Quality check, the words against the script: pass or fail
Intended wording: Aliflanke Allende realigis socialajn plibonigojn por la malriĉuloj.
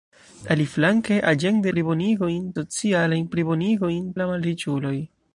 fail